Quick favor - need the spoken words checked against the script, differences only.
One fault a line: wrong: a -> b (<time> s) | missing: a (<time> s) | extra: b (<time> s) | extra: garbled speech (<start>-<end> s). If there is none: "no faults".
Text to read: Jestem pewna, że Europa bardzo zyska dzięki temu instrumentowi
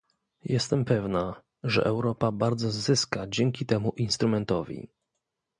no faults